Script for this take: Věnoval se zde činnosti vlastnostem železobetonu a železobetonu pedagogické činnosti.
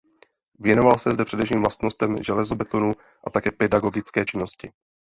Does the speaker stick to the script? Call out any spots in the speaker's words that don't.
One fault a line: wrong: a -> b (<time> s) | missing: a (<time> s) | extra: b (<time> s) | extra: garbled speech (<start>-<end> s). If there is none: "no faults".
wrong: činnosti -> především (1.2 s)
wrong: železobetonu -> také (3.3 s)